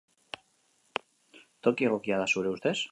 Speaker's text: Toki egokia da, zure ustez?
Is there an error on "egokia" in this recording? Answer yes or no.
no